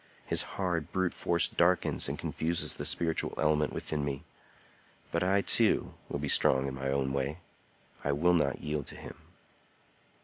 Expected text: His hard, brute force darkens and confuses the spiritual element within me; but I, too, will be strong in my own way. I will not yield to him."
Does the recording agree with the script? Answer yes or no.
yes